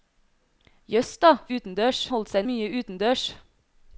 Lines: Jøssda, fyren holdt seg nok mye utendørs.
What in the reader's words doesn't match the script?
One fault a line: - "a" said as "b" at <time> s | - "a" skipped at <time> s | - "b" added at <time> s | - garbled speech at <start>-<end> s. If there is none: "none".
- "fyren" said as "utendørs" at 1.6 s
- "nok" skipped at 2.4 s